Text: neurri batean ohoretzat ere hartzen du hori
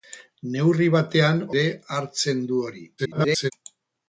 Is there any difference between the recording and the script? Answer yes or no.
yes